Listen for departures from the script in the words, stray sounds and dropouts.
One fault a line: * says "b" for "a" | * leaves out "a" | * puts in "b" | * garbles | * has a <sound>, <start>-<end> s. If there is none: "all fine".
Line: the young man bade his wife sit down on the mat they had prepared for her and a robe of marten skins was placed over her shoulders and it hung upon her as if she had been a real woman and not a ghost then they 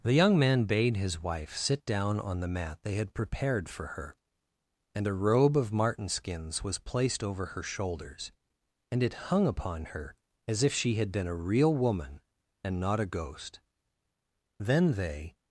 all fine